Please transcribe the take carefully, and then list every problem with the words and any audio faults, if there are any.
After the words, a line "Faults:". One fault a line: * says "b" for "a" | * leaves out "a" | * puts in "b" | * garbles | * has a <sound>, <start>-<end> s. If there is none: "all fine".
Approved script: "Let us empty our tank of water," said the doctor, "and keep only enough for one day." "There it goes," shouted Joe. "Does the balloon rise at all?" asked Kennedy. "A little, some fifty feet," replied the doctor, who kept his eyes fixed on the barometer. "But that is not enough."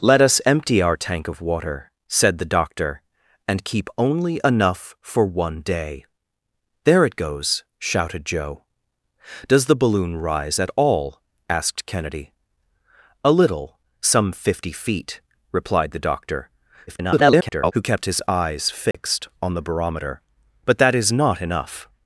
"Let us empty our tank of water," said the doctor, "and keep only enough for one day." "There it goes," shouted Joe. "Does the balloon rise at all?" asked Kennedy. "A little, some fifty feet," replied the doctor, [garbled] who kept his eyes fixed on the barometer. "But that is not enough."
Faults:
* garbles
* has a dropout, 18.9-18.9 s